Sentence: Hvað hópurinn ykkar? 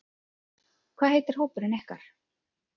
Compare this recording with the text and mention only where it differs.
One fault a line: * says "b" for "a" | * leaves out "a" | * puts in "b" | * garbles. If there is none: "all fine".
* puts in "heitir"